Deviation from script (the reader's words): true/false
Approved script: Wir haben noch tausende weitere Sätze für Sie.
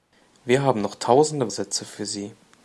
true